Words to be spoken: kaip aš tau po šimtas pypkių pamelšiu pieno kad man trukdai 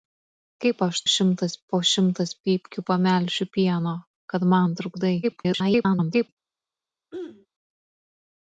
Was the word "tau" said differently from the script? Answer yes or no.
yes